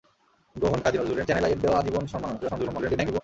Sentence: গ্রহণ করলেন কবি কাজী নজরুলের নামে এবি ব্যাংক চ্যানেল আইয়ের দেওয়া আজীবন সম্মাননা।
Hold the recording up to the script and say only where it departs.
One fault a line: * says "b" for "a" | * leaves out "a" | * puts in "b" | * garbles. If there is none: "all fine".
* leaves out "করলেন কবি"
* leaves out "নামে এবি ব্যাংক"
* garbles